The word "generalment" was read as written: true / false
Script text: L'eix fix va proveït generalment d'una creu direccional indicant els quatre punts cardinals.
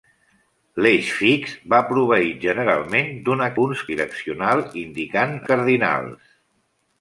true